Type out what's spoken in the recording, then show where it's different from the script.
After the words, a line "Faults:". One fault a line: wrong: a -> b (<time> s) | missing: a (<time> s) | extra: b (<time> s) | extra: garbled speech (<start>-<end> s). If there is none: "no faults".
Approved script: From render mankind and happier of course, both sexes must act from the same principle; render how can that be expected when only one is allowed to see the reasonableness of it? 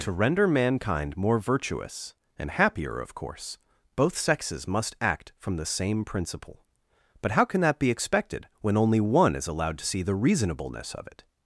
To render mankind more virtuous, and happier of course, both sexes must act from the same principle; but how can that be expected when only one is allowed to see the reasonableness of it?
Faults:
wrong: From -> To (0.0 s)
extra: more virtuous (1.1 s)
wrong: render -> but (7.2 s)